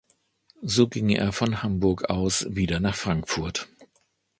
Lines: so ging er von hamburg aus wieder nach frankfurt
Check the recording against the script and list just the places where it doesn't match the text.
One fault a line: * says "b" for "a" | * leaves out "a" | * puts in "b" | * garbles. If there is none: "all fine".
all fine